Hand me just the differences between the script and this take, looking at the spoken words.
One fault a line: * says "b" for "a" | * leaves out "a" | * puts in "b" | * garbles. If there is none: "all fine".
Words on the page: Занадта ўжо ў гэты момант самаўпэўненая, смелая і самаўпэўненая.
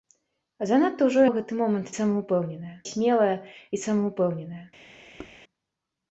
all fine